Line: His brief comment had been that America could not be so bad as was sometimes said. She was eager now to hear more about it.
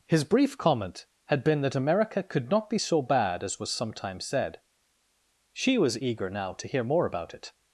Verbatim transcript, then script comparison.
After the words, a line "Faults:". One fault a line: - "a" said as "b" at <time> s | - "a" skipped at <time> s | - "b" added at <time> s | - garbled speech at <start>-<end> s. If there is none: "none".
His brief comment had been that America could not be so bad as was sometimes said. She was eager now to hear more about it.
Faults:
none